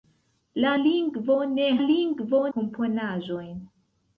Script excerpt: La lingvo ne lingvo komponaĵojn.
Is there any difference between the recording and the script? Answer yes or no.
no